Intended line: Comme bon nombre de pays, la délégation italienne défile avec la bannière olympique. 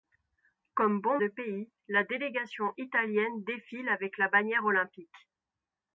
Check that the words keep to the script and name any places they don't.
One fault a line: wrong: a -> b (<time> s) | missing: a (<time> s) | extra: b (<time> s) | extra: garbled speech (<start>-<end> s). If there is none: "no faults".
missing: nombre (1.2 s)